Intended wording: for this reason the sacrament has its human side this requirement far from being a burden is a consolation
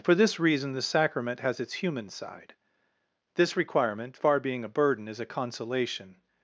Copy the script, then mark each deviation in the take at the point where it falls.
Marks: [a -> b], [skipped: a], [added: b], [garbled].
for this reason the sacrament has its human side this requirement far [skipped: from] being a burden is a consolation